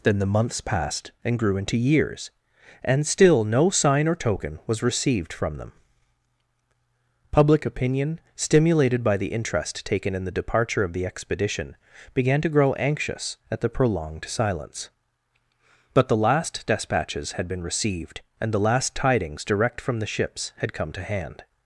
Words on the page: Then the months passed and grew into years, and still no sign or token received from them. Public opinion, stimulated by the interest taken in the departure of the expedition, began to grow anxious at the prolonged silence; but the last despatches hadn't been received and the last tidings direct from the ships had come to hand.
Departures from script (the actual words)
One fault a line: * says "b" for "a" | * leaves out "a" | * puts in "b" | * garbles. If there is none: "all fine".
* puts in "was"
* says "had" for "hadn't"